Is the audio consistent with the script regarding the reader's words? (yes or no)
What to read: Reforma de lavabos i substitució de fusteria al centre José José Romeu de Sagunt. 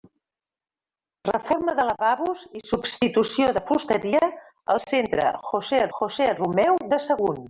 yes